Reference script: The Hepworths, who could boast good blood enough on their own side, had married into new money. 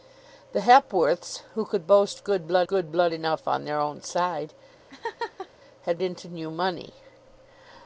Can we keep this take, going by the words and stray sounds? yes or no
no